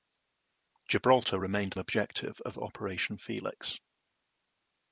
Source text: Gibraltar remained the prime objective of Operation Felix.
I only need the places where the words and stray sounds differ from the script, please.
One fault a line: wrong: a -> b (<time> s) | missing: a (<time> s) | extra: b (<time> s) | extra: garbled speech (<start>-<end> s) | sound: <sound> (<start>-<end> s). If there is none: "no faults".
missing: the prime (1.7 s)